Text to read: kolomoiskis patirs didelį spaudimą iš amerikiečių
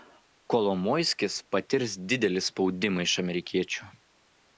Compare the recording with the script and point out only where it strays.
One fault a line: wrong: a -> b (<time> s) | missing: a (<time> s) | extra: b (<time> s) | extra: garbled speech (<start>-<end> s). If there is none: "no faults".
no faults